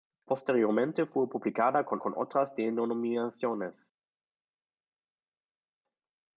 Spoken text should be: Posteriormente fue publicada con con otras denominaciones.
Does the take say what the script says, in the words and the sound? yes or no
yes